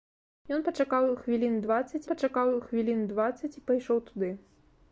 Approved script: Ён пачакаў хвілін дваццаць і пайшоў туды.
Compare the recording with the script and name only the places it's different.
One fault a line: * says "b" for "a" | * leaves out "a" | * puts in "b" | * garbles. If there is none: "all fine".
* puts in "пачакаў хвілін дваццаць"